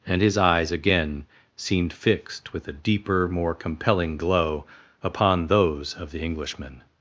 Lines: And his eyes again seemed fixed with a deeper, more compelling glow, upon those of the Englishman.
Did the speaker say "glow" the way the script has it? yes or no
yes